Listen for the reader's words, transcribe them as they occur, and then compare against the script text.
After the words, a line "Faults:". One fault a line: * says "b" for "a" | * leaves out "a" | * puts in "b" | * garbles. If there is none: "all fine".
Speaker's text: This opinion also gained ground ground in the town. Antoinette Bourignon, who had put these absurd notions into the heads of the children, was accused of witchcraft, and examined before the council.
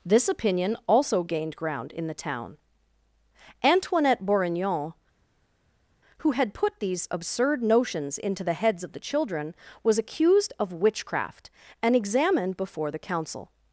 This opinion also gained ground in the town. Antoinette Bourignon, who had put these absurd notions into the heads of the children, was accused of witchcraft, and examined before the council.
Faults:
* leaves out "ground"